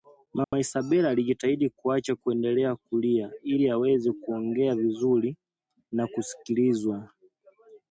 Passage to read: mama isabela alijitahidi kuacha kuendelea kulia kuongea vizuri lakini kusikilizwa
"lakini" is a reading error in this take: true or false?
true